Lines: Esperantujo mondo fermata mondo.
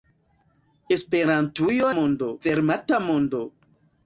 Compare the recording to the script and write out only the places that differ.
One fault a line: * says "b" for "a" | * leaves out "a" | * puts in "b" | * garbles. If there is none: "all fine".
all fine